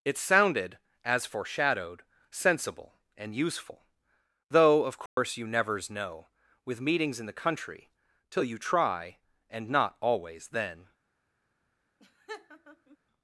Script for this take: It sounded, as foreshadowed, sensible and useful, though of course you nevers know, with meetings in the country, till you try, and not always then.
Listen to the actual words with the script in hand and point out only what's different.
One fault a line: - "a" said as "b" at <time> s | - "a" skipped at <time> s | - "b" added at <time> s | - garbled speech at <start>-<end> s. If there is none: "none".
none